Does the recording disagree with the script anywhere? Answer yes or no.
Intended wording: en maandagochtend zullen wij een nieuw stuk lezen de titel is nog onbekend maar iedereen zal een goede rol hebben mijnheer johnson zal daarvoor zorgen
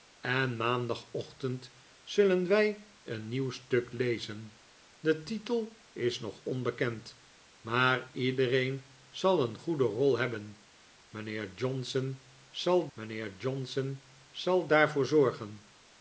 yes